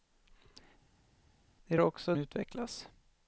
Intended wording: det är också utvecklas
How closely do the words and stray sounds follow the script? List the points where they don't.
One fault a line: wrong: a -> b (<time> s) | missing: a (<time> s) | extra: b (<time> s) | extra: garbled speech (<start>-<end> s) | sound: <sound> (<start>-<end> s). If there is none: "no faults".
no faults